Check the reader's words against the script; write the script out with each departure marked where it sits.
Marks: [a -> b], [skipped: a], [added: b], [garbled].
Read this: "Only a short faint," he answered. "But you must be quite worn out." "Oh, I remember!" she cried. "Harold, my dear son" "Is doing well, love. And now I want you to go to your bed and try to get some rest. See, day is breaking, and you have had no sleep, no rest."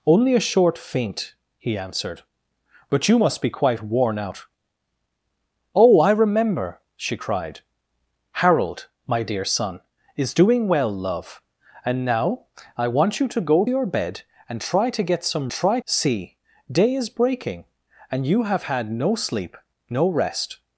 "Only a short faint," he answered. "But you must be quite worn out." "Oh, I remember!" she cried. "Harold, my dear son" "Is doing well, love. And now I want you to go [skipped: to] your bed and try to get some [rest. -> try] See, day is breaking, and you have had no sleep, no rest."